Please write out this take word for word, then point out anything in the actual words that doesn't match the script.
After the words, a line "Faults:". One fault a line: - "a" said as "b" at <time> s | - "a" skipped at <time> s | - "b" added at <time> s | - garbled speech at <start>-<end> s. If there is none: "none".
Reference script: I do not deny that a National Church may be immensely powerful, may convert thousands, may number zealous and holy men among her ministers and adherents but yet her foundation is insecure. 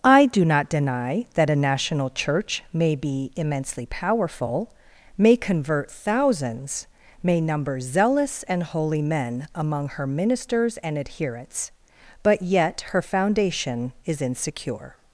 I do not deny that a National Church may be immensely powerful, may convert thousands, may number zealous and holy men among her ministers and adherents but yet her foundation is insecure.
Faults:
none